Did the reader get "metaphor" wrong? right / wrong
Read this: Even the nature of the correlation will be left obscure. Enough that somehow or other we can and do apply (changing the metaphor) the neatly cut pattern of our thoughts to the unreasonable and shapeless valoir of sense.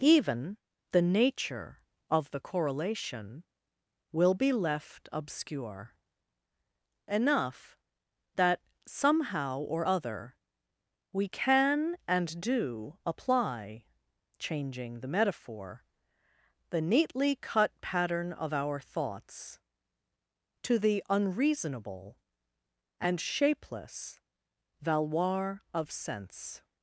right